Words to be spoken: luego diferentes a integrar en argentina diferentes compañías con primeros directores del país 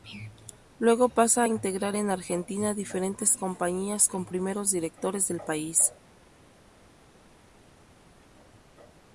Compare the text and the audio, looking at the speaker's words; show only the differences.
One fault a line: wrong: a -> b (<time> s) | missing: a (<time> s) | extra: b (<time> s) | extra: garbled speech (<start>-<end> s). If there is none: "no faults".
wrong: diferentes -> pasa (1.1 s)